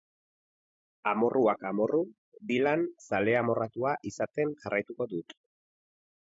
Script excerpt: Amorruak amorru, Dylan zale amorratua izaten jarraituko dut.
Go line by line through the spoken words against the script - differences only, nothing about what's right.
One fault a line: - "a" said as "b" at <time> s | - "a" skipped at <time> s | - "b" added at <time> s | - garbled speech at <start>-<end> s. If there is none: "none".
none